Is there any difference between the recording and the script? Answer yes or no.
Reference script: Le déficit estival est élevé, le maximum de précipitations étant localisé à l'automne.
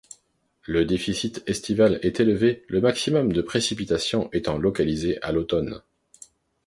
no